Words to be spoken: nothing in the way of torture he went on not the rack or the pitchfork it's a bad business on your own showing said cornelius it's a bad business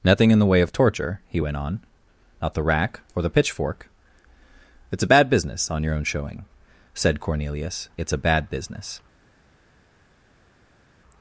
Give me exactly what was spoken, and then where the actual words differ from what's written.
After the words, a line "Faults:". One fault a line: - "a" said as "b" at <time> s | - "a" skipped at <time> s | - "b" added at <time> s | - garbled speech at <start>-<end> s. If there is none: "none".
nothing in the way of torture he went on not the rack or the pitchfork it's a bad business on your own showing said cornelius it's a bad business
Faults:
none